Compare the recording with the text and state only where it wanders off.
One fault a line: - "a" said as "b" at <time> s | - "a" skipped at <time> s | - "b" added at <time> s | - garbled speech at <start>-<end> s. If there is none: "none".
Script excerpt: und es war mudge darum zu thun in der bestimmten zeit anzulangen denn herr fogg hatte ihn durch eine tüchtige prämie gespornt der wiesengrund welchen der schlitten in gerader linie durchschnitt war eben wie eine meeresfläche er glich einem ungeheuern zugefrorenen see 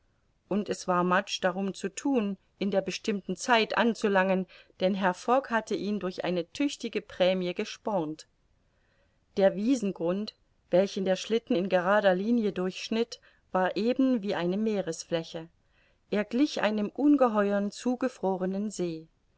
none